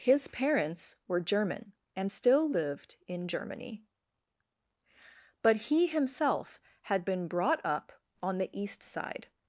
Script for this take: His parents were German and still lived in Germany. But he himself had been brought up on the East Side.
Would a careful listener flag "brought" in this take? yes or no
no